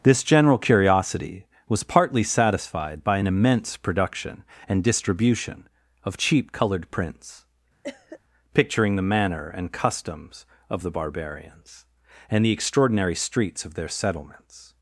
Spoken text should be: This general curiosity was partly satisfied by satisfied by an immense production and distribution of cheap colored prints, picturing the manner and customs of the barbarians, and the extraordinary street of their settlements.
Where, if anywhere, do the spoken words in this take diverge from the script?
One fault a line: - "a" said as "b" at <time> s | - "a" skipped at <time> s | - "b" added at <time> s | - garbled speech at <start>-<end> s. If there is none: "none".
- "satisfied by" skipped at 3.2 s
- "street" said as "streets" at 13.1 s